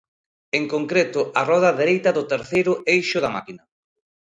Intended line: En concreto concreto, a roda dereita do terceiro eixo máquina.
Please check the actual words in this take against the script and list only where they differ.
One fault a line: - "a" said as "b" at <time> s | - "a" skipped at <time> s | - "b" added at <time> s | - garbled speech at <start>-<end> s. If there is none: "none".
- "concreto" skipped at 1.2 s
- "da" added at 3.2 s